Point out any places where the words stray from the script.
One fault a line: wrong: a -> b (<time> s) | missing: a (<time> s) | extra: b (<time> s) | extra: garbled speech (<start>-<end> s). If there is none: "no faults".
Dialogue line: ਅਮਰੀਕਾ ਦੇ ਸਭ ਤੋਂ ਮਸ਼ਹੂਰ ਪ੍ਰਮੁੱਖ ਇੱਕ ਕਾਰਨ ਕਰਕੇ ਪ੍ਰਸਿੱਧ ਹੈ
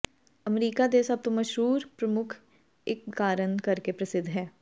no faults